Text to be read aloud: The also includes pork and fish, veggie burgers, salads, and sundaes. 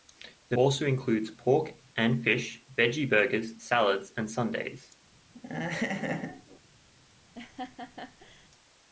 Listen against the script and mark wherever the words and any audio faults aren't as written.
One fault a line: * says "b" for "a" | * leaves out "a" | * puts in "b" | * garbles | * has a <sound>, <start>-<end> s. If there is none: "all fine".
* has a laugh, 5.3-6.6 s
* has a laugh, 7.4-8.5 s